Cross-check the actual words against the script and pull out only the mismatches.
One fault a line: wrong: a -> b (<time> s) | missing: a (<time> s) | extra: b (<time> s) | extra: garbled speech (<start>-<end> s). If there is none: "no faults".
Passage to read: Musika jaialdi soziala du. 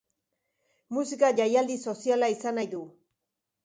extra: izan nahi (2.4 s)